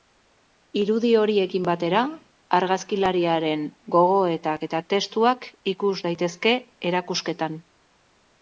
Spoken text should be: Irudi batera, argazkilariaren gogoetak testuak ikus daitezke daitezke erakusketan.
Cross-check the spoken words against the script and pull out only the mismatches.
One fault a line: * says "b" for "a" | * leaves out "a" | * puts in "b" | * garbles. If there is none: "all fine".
* puts in "horiekin"
* puts in "eta"
* leaves out "daitezke"